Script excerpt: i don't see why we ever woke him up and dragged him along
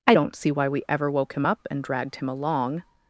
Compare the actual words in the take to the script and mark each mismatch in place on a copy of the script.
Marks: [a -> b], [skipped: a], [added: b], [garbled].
i don't see why we ever woke him up and dragged him along